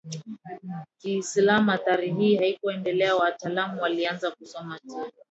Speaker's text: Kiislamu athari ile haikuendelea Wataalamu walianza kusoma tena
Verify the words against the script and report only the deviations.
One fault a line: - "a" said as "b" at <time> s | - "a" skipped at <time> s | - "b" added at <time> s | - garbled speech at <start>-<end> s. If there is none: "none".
- "ile" said as "hii" at 2.1 s